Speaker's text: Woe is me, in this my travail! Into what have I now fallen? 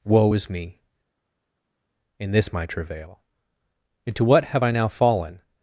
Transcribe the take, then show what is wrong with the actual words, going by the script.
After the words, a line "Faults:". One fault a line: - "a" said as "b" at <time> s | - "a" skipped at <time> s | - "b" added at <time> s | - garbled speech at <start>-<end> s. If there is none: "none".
Woe is me, in this my travail! Into what have I now fallen?
Faults:
none